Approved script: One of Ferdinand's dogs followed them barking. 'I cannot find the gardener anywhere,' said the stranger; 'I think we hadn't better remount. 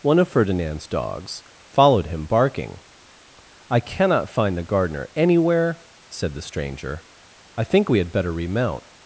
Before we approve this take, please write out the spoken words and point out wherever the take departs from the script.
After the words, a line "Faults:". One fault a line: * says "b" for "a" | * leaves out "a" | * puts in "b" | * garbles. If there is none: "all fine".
One of Ferdinand's dogs followed him barking. 'I cannot find the gardener anywhere,' said the stranger; 'I think we had better remount.
Faults:
* says "him" for "them"
* says "had" for "hadn't"